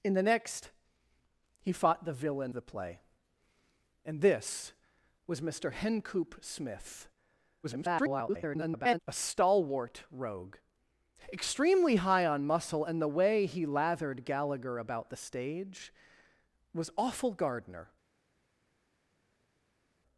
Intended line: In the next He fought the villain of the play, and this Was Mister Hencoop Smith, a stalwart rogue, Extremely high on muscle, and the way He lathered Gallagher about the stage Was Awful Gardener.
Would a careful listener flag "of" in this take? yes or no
yes